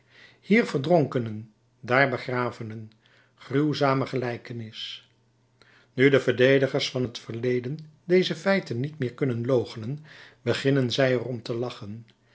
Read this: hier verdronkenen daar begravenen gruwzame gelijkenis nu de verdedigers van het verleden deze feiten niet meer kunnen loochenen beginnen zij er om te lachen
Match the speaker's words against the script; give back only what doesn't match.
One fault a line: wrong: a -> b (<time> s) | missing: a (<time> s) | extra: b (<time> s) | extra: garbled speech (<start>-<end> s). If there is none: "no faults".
no faults